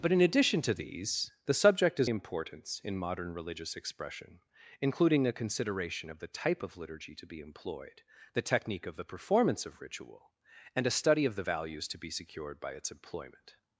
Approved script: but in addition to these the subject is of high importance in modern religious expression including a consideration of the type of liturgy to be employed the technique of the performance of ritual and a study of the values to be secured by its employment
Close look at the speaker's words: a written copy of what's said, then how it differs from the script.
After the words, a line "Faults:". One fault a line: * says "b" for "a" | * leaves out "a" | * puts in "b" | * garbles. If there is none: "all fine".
but in addition to these the subject is importance in modern religious expression including a consideration of the type of liturgy to be employed the technique of the performance of ritual and a study of the values to be secured by its employment
Faults:
* leaves out "of high"